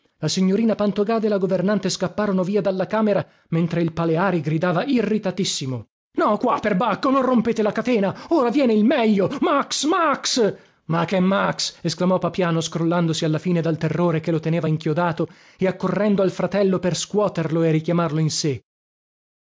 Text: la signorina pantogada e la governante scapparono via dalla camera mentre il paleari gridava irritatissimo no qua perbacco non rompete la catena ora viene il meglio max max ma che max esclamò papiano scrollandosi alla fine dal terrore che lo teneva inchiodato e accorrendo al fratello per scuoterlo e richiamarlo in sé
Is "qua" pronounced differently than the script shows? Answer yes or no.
no